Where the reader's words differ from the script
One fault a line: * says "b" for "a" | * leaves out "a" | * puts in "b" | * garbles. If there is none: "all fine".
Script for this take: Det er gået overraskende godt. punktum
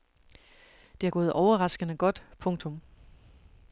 all fine